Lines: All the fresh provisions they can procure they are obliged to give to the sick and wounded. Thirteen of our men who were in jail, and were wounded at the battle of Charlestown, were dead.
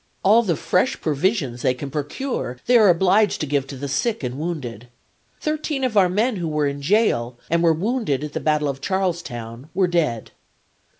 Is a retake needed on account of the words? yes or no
no